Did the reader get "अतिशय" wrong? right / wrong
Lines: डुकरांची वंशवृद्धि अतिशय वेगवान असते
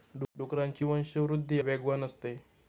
wrong